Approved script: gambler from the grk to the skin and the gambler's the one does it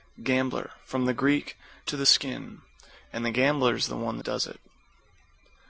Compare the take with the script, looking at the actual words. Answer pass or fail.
pass